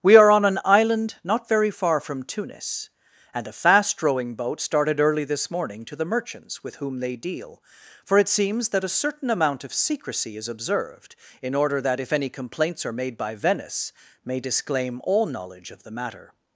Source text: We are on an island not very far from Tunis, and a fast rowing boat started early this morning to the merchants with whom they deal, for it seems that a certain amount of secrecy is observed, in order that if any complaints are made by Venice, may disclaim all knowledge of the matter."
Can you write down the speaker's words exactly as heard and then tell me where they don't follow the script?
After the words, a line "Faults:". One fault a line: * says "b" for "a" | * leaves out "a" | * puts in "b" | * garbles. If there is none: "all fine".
We are on an island not very far from Tunis, and a fast rowing boat started early this morning to the merchants with whom they deal, for it seems that a certain amount of secrecy is observed, in order that if any complaints are made by Venice, may disclaim all knowledge of the matter."
Faults:
all fine